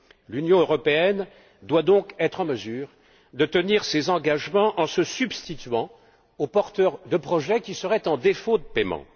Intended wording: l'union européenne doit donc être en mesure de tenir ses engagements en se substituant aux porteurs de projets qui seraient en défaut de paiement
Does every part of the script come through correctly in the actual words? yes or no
yes